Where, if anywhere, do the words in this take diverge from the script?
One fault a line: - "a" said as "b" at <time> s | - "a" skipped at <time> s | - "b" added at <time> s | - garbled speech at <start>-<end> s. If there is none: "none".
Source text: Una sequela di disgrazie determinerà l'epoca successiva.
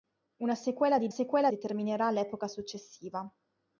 - "disgrazie" said as "sequela" at 1.1 s